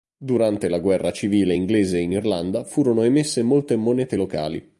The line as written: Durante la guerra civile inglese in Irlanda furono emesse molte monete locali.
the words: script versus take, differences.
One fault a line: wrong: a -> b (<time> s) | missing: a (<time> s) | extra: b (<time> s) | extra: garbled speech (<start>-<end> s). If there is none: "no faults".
no faults